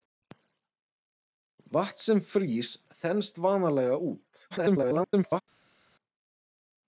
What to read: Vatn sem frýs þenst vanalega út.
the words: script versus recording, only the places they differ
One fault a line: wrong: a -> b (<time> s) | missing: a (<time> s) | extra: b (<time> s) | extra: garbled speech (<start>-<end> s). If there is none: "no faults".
extra: garbled speech (4.5-5.4 s)